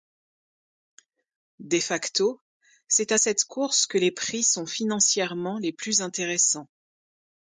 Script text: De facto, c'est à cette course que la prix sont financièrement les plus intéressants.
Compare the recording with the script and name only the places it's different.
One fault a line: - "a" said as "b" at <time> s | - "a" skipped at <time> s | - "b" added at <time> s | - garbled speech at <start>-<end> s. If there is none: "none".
- "la" said as "les" at 4.0 s